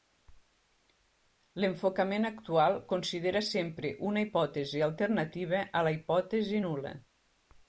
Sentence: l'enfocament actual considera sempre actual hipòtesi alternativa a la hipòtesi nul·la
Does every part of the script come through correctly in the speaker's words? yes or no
no